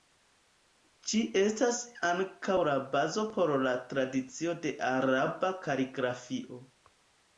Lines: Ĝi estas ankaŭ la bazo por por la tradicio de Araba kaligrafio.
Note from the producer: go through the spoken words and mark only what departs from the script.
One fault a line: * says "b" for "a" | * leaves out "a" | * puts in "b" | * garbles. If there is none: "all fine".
* leaves out "por"